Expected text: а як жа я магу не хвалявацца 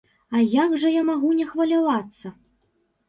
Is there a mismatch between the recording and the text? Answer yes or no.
no